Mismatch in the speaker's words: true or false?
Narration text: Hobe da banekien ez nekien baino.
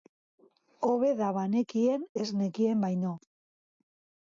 false